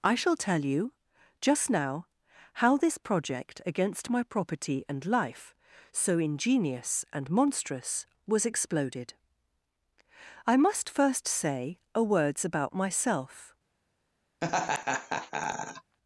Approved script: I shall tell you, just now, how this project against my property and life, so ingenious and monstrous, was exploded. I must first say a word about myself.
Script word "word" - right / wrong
wrong